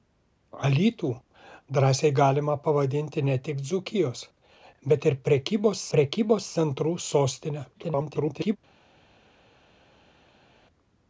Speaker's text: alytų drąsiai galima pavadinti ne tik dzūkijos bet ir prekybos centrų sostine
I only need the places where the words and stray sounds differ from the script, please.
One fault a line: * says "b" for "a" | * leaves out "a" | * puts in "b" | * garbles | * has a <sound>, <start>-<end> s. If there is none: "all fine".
* puts in "prekybos"
* garbles